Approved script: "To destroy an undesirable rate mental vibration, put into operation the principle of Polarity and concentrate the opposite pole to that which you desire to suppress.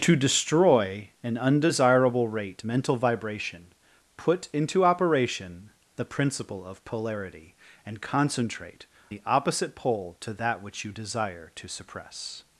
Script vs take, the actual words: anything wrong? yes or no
no